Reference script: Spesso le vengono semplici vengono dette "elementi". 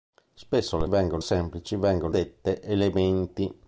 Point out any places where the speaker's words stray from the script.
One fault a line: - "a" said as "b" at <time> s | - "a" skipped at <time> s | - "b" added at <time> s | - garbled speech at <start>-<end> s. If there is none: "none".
none